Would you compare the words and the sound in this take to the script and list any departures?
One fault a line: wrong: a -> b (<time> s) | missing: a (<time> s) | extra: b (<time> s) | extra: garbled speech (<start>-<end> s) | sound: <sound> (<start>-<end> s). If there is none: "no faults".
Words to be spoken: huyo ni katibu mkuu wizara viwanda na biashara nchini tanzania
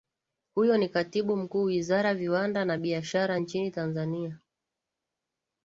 no faults